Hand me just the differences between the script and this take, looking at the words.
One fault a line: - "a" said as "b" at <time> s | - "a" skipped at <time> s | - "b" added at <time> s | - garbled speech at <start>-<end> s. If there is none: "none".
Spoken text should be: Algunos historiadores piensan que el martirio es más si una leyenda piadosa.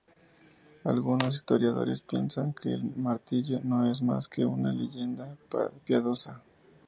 - "no" added at 3.6 s
- "si" said as "que" at 4.3 s